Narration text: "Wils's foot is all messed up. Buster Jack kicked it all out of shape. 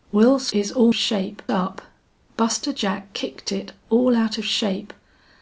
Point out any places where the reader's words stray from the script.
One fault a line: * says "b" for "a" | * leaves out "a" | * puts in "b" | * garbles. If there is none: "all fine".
* leaves out "foot"
* says "shape" for "messed"